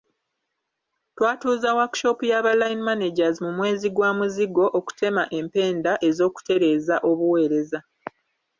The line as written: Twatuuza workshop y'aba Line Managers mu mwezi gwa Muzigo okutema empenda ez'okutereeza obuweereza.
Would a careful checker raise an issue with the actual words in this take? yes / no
no